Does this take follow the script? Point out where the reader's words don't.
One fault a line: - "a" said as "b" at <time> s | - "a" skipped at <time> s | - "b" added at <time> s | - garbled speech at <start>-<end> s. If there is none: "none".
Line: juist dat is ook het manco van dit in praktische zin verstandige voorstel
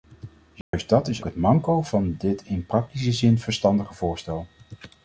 - "ook" skipped at 1.2 s